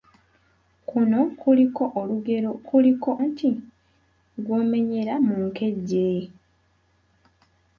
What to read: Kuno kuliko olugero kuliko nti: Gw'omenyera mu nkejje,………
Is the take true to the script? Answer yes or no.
yes